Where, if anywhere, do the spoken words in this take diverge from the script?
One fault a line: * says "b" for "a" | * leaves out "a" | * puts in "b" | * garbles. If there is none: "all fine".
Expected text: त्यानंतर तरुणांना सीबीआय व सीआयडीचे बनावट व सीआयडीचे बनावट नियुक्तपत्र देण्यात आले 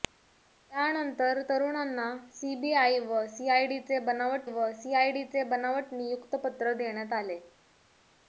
all fine